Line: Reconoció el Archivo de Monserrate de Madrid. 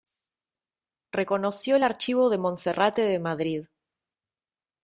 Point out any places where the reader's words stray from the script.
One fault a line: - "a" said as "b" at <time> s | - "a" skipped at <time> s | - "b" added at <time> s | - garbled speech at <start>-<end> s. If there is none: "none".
none